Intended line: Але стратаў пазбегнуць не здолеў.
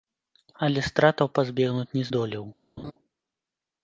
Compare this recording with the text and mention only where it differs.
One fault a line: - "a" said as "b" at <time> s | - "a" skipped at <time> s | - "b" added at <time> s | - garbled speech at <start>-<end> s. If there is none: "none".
none